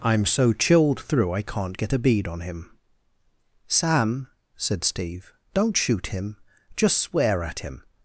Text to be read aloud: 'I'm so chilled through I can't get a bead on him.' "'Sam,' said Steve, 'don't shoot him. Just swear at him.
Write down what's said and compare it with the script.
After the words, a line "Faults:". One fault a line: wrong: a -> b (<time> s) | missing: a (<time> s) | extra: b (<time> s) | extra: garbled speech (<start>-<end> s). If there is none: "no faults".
'I'm so chilled through I can't get a bead on him.' "'Sam,' said Steve, 'don't shoot him. Just swear at him.
Faults:
no faults